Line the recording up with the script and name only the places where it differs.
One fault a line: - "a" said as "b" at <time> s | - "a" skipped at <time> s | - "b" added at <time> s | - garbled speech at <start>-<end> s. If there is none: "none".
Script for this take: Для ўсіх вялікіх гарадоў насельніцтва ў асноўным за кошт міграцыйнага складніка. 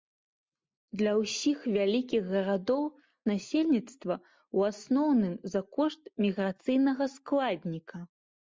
none